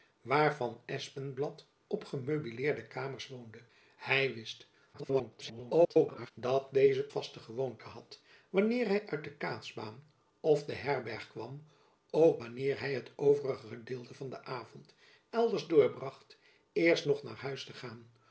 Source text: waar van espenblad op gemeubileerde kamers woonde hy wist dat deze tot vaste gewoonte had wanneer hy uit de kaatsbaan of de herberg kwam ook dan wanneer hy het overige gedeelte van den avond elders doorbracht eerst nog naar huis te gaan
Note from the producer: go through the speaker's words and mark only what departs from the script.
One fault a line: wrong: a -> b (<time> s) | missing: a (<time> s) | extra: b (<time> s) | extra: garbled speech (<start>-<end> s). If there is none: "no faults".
extra: garbled speech (4.9-6.3 s)
missing: tot (7.1 s)
missing: dan (12.4 s)